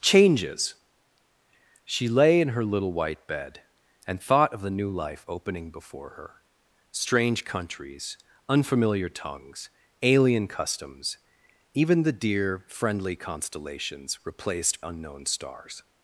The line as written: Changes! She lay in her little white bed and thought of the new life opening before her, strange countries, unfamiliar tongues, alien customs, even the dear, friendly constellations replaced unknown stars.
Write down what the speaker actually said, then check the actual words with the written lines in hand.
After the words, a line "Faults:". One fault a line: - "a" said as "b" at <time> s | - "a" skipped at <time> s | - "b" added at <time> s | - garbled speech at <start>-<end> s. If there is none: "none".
Changes! She lay in her little white bed and thought of the new life opening before her, strange countries, unfamiliar tongues, alien customs, even the dear, friendly constellations replaced unknown stars.
Faults:
none